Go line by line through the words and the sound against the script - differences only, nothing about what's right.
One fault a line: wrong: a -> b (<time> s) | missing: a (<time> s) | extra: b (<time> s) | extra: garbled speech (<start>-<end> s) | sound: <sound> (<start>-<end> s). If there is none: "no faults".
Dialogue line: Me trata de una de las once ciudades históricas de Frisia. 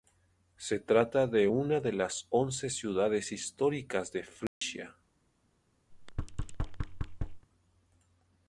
wrong: Me -> Se (0.6 s)
sound: dropout (4.5-4.6 s)
sound: thud (5.9-7.5 s)